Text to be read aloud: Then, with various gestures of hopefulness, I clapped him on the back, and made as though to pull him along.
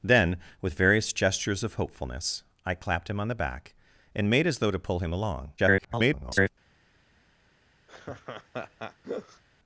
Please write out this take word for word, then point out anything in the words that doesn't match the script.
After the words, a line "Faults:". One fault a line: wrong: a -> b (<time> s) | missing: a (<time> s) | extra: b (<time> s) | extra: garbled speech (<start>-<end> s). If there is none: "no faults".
Then, with various gestures of hopefulness, I clapped him on the back, and made as though to pull him along. [garbled]
Faults:
extra: garbled speech (5.6-6.5 s)